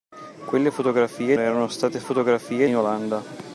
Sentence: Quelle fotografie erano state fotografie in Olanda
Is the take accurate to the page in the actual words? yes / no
yes